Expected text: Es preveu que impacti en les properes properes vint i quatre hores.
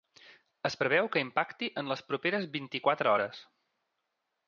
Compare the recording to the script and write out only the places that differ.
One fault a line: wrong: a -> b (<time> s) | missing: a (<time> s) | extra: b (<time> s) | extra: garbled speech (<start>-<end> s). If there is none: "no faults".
missing: properes (2.5 s)